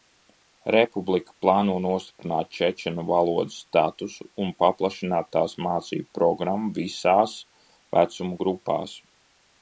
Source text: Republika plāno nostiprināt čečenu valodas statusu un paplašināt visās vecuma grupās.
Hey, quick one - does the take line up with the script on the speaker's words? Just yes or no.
no